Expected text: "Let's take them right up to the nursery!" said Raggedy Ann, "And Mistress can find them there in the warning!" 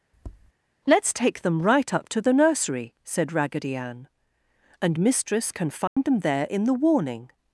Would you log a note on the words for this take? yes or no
no